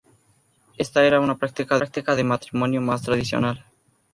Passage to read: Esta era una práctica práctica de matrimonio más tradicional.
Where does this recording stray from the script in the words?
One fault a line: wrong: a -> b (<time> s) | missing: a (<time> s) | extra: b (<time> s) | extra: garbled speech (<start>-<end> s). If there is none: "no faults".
no faults